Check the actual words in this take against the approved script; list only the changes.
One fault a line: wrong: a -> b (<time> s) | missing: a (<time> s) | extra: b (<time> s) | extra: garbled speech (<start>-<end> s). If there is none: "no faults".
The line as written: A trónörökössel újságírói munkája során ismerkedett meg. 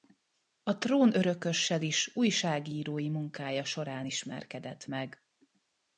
extra: is (1.8 s)